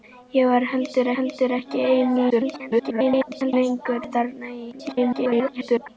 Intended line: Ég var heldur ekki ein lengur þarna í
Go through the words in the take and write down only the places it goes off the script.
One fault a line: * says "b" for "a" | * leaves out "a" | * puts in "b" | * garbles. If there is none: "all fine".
* puts in "heldur"
* garbles
* garbles